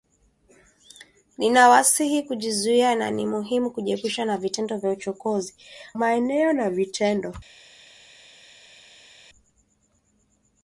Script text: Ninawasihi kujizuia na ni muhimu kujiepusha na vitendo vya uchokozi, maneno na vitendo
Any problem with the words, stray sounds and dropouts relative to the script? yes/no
no